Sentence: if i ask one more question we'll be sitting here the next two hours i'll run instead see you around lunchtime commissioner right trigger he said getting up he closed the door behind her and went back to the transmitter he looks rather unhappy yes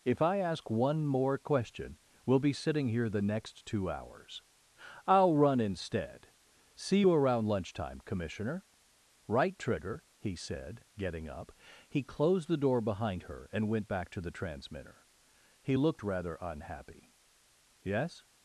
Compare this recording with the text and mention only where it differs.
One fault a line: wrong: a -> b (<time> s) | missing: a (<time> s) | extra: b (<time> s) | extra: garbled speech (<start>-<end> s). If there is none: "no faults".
wrong: looks -> looked (15.8 s)